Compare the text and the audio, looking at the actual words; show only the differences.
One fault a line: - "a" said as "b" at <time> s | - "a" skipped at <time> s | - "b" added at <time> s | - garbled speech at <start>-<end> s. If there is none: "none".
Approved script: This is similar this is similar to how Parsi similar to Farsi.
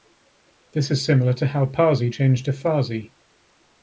- "this is similar" skipped at 1.3 s
- "similar" said as "changed" at 2.1 s